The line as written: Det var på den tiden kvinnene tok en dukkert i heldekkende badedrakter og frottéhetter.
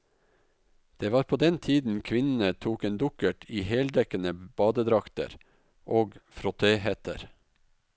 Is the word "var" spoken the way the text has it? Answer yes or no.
yes